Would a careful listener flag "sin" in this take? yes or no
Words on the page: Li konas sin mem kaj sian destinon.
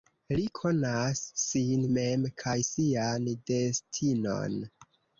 no